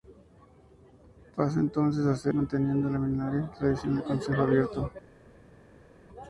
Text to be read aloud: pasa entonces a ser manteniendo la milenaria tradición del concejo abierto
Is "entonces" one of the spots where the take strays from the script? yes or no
no